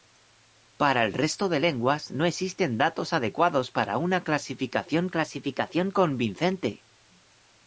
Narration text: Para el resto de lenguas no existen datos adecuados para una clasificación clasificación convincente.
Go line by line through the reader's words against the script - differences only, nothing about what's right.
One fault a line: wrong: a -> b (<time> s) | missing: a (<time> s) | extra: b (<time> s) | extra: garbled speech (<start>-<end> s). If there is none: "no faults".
no faults